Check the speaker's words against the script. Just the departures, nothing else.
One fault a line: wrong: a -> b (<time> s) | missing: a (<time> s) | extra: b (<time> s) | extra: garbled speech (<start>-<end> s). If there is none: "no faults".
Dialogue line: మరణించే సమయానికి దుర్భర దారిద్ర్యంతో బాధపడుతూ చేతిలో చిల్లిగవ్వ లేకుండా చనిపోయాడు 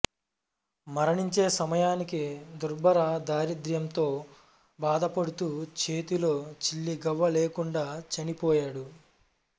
no faults